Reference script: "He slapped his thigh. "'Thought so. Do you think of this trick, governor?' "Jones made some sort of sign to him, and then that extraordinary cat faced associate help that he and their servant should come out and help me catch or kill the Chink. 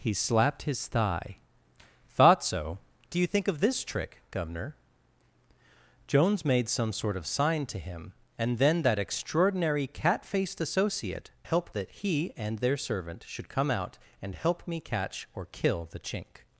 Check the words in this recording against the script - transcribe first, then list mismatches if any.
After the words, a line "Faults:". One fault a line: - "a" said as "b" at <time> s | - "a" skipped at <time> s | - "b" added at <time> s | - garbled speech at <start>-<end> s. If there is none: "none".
"He slapped his thigh. "'Thought so. Do you think of this trick, governor?' "Jones made some sort of sign to him, and then that extraordinary cat faced associate help that he and their servant should come out and help me catch or kill the Chink.
Faults:
none